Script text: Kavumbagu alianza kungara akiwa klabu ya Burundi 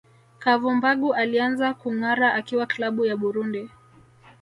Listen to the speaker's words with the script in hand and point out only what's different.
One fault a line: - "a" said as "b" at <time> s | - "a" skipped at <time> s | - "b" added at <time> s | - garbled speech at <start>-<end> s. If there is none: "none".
none